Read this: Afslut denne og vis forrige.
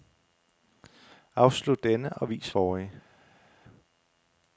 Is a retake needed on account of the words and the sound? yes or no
no